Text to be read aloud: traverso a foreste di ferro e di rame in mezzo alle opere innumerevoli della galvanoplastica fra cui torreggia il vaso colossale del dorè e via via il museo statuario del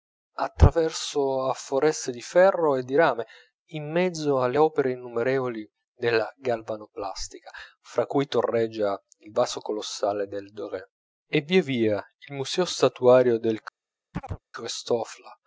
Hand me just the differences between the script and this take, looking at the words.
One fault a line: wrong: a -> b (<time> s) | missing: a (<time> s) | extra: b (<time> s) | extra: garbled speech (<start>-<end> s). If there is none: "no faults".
no faults